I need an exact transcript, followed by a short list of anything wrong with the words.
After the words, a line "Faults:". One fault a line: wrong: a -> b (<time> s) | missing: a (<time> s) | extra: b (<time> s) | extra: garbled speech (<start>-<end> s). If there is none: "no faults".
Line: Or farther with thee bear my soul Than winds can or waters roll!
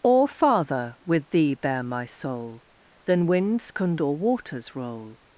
Or farther with thee bear my soul Than winds can or waters roll!
Faults:
no faults